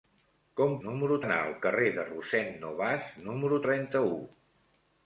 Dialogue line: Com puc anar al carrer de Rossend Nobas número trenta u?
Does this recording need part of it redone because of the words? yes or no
yes